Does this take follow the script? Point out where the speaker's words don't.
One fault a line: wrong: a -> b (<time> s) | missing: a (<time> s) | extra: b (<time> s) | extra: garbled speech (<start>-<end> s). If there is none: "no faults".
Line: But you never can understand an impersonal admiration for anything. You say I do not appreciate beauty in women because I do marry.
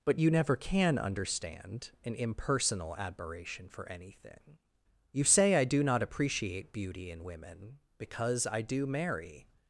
no faults